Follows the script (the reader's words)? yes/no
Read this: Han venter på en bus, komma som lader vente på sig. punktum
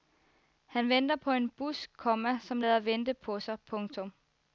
yes